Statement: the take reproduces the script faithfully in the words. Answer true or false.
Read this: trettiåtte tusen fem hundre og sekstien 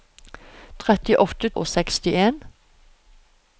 false